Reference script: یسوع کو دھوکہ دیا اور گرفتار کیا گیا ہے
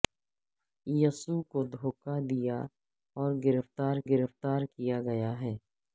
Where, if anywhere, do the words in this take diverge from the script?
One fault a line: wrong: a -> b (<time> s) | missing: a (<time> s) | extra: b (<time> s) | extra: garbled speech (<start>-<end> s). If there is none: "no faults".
extra: گرفتار (4.1 s)